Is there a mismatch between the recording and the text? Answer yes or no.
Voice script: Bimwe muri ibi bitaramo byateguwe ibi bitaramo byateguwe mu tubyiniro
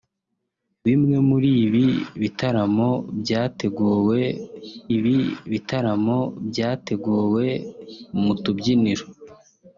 no